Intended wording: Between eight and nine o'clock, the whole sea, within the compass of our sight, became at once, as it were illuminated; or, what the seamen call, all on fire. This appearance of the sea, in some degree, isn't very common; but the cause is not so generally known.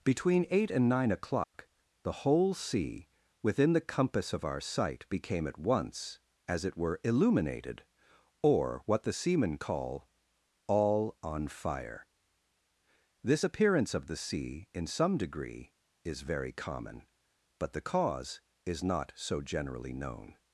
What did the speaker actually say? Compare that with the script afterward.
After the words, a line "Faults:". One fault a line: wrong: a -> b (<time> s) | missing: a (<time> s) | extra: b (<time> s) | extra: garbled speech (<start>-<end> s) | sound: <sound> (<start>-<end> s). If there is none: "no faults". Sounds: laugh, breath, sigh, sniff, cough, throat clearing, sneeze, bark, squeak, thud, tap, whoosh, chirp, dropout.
Between eight and nine o'clock, the whole sea, within the compass of our sight, became at once, as it were illuminated; or, what the seamen call, all on fire. This appearance of the sea, in some degree, is very common; but the cause is not so generally known.
Faults:
sound: dropout (1.4-1.5 s)
wrong: isn't -> is (16.1 s)